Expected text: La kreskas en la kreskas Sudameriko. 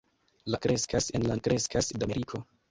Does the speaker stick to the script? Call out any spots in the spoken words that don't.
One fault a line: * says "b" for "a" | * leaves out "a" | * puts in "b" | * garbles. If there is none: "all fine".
all fine